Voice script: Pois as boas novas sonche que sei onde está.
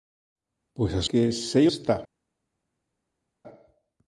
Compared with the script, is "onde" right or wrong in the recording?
wrong